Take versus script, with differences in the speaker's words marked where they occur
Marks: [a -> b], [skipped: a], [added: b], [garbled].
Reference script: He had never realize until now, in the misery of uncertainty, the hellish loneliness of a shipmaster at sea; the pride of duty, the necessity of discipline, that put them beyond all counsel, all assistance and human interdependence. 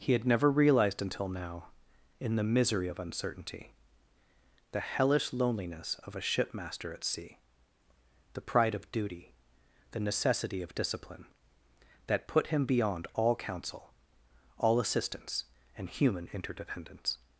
He had never [realize -> realized] until now, in the misery of uncertainty, the hellish loneliness of a shipmaster at sea; the pride of duty, the necessity of discipline, that put [them -> him] beyond all counsel, all assistance and human interdependence.